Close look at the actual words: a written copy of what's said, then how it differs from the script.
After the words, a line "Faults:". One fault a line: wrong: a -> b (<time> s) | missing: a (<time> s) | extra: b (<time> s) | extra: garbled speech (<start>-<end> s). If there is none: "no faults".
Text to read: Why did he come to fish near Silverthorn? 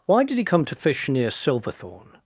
Why did he come to fish near Silverthorn?
Faults:
no faults